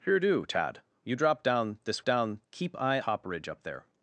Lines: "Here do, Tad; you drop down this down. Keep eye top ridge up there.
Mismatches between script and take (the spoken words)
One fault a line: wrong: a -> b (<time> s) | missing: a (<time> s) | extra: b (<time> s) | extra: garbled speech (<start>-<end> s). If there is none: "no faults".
no faults